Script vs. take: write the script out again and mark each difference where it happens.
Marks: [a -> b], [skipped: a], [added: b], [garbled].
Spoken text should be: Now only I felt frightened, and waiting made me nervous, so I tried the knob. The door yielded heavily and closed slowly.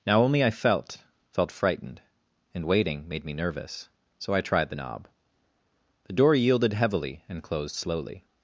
Now only I felt [added: felt] frightened, and waiting made me nervous, so I tried the knob. The door yielded heavily and closed slowly.